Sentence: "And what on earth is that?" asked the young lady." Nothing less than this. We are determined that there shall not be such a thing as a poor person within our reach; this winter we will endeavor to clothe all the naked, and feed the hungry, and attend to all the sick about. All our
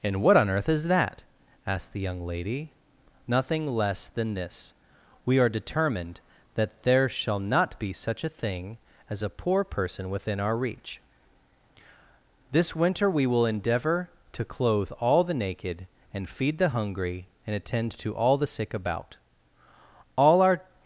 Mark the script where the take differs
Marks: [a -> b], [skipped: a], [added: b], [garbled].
"And what on earth is that?" asked the young lady." Nothing less than this. We are determined that there shall not be such a thing as a poor person within our reach; this winter we will endeavor to clothe all the naked, and feed the hungry, and attend to all the sick about. All our